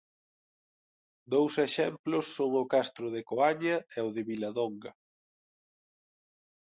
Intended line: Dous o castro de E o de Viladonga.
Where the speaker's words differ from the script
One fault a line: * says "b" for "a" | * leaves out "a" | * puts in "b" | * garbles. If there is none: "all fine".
* puts in "exemplos son"
* puts in "Coaña"